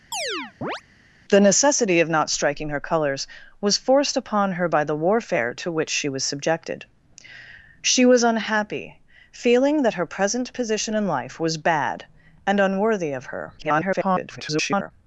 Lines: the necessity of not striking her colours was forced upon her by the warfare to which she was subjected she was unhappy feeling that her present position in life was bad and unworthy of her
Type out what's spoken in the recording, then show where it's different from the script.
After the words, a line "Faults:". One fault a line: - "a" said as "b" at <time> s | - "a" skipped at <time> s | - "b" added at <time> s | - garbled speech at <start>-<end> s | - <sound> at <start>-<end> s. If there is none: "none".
the necessity of not striking her colours was forced upon her by the warfare to which she was subjected she was unhappy feeling that her present position in life was bad and unworthy of her [garbled]
Faults:
- chirp at 0.1-0.8 s
- garbled speech at 13.6-14.9 s